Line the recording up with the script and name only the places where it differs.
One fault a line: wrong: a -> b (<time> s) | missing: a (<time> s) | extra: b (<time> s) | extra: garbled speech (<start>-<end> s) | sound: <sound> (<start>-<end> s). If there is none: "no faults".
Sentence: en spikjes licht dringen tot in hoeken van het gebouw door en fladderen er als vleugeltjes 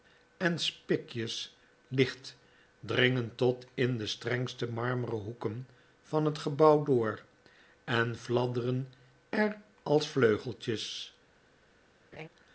extra: de strengste marmeren (4.0 s)
sound: laugh (12.1-12.3 s)